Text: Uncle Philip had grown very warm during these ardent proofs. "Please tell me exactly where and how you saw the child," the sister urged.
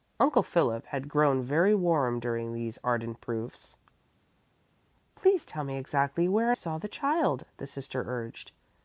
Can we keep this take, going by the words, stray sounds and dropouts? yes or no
no